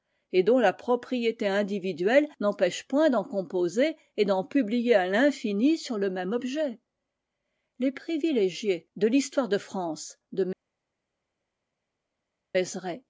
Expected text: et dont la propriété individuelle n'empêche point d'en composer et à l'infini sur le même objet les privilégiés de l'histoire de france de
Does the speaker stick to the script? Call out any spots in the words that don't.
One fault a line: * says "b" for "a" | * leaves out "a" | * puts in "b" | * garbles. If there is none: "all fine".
* puts in "d'en publier"